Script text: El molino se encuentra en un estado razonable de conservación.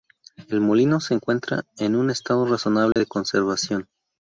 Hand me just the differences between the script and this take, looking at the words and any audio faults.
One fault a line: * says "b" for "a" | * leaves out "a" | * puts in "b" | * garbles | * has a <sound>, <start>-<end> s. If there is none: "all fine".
* has a dropout, 2.9-3.0 s